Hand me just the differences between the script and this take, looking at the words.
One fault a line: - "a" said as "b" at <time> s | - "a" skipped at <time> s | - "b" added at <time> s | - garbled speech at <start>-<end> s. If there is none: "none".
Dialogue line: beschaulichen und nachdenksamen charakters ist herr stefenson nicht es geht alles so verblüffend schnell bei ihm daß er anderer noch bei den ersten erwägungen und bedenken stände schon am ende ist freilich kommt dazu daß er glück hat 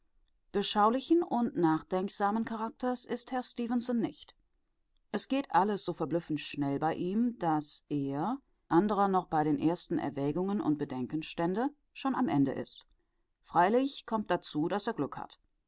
none